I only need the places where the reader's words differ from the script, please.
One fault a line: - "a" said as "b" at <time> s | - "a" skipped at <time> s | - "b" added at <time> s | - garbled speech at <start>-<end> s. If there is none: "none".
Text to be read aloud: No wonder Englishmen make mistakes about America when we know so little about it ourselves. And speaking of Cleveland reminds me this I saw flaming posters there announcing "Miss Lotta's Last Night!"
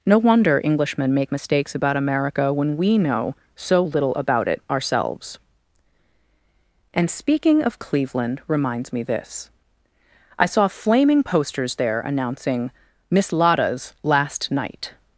none